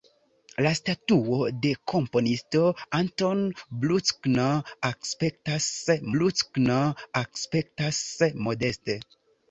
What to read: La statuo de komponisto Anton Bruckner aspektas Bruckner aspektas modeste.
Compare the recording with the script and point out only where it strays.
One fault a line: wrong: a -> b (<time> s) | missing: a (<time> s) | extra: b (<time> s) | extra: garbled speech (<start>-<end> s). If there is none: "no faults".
no faults